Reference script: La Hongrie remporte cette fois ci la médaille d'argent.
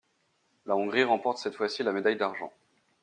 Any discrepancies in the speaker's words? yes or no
no